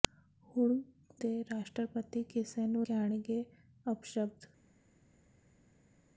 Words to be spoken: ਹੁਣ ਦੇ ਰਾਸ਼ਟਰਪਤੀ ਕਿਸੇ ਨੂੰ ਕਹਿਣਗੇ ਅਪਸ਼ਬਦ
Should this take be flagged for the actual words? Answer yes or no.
no